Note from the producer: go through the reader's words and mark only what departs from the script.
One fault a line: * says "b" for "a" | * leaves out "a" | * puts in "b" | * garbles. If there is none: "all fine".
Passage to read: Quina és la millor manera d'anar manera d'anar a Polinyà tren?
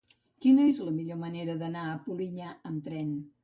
* leaves out "manera d'anar"
* puts in "amb"